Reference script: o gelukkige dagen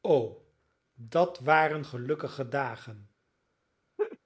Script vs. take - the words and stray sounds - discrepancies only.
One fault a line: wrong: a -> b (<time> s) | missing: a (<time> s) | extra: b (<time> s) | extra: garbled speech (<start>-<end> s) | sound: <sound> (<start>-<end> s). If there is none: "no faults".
extra: dat waren (0.9 s)
sound: laugh (4.0-4.2 s)